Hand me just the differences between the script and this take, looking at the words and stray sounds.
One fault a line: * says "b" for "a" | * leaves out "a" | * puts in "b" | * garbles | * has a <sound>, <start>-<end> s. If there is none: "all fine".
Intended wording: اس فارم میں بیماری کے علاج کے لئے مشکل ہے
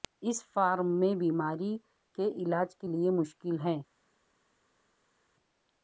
all fine